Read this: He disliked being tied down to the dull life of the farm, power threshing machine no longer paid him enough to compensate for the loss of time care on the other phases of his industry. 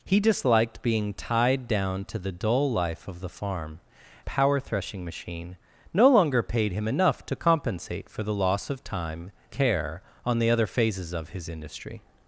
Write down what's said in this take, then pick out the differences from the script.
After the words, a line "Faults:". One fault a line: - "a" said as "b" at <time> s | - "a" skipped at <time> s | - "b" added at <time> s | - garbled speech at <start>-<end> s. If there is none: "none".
He disliked being tied down to the dull life of the farm, power threshing machine no longer paid him enough to compensate for the loss of time care on the other phases of his industry.
Faults:
none